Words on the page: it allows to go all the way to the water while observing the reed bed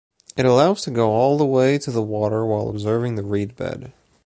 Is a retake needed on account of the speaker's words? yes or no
no